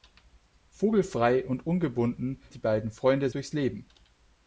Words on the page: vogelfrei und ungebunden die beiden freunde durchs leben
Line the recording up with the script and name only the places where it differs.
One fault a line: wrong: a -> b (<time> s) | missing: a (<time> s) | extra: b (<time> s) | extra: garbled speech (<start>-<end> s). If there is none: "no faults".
no faults